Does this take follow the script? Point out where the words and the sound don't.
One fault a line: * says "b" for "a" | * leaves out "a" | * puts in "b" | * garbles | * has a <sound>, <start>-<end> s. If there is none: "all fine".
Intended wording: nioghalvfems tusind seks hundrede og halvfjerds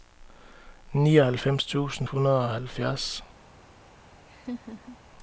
* leaves out "seks"
* has a laugh, 4.3-5.0 s